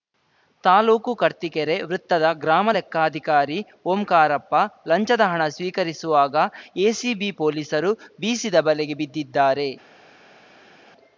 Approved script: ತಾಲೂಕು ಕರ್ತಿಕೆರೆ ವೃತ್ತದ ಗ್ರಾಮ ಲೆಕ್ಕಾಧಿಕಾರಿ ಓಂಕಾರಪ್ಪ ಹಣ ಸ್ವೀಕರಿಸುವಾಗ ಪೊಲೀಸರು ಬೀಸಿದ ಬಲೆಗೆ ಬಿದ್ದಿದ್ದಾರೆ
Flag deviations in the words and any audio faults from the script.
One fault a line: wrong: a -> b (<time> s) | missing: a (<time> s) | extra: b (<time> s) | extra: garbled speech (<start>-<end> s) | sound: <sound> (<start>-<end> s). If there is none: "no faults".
extra: ಲಂಚದ (4.9 s)
extra: ಎಸಿಬಿ (6.9 s)